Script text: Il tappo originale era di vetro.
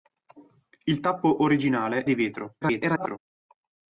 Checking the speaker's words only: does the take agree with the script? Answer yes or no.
no